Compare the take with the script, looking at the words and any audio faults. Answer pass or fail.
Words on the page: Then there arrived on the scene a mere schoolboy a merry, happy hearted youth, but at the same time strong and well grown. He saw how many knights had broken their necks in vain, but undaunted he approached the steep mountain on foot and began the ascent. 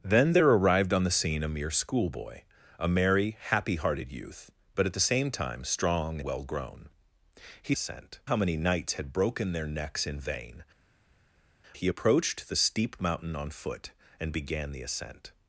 fail